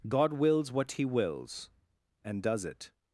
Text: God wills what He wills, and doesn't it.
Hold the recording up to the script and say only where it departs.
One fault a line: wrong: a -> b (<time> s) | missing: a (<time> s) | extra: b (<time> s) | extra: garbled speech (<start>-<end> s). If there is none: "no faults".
wrong: doesn't -> does (2.4 s)